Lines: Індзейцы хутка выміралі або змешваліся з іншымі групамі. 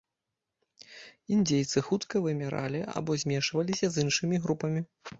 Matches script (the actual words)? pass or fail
pass